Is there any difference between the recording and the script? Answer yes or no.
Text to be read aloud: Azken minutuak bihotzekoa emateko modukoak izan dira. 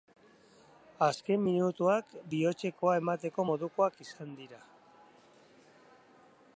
no